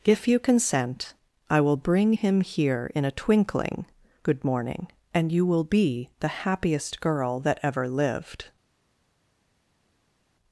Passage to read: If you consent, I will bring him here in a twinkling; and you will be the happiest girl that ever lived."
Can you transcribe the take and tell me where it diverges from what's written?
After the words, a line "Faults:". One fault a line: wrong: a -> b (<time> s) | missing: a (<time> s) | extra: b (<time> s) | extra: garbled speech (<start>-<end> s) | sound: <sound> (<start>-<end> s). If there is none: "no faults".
If you consent, I will bring him here in a twinkling; good morning and you will be the happiest girl that ever lived."
Faults:
extra: good morning (4.2 s)